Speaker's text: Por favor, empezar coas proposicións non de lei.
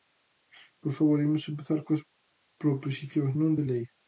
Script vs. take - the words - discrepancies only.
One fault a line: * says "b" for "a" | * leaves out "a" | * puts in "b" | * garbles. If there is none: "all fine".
* puts in "imos"